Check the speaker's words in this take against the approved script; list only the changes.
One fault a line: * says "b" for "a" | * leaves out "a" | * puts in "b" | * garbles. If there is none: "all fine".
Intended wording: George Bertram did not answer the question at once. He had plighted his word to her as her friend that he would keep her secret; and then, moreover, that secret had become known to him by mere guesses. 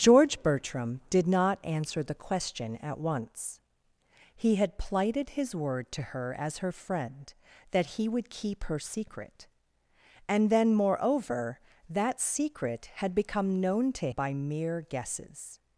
* leaves out "him"